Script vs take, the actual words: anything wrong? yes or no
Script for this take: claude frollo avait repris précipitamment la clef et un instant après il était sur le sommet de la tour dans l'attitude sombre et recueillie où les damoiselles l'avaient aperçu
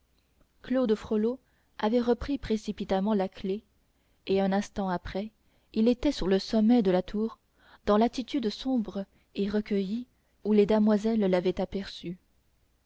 no